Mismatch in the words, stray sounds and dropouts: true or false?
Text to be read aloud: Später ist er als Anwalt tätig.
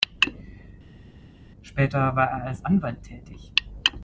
true